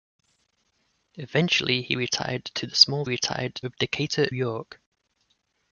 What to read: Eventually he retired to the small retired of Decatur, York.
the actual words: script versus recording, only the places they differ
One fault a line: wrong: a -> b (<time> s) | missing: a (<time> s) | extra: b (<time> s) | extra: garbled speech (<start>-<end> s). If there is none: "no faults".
no faults